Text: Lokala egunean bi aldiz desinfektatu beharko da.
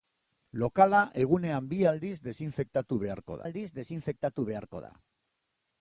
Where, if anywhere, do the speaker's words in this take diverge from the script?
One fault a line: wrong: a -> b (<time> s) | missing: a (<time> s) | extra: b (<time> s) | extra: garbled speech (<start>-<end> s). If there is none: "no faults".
extra: aldiz desinfektatu beharko (3.5 s)